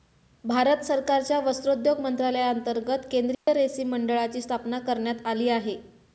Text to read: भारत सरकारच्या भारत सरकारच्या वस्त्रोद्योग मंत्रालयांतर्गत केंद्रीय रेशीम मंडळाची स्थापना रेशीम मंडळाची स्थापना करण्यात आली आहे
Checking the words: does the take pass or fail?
fail